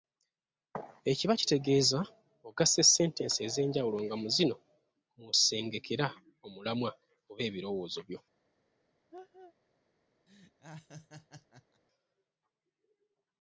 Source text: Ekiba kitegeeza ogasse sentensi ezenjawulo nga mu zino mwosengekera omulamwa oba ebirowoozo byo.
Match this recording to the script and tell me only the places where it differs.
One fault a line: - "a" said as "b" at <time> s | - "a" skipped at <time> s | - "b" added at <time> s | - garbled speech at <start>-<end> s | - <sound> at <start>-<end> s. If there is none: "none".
- laugh at 9.1-9.5 s
- laugh at 10.3-11.8 s